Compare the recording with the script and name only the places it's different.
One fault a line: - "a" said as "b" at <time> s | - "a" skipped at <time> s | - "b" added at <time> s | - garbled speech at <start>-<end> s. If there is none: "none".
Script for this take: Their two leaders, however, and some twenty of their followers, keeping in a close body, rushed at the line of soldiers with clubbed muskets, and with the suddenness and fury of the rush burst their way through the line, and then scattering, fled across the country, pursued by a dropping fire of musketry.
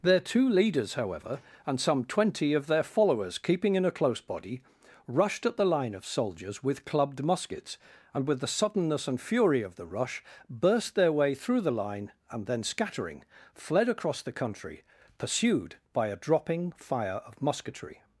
none